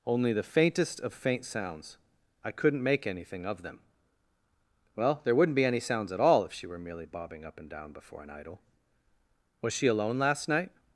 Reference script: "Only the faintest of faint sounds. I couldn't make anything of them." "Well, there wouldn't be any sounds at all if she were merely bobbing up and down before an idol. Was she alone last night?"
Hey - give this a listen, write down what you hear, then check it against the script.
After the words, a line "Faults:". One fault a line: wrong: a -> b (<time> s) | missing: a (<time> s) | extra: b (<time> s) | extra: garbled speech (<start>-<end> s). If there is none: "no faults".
"Only the faintest of faint sounds. I couldn't make anything of them." "Well, there wouldn't be any sounds at all if she were merely bobbing up and down before an idol. Was she alone last night?"
Faults:
no faults